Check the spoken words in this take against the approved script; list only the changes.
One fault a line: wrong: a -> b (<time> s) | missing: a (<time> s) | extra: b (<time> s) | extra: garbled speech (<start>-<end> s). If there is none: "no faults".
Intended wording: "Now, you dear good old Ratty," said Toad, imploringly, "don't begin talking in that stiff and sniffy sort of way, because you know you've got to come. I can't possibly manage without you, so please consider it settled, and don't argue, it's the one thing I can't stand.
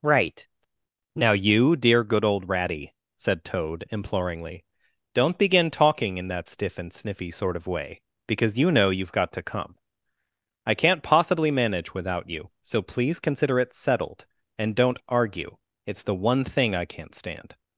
extra: right (0.0 s)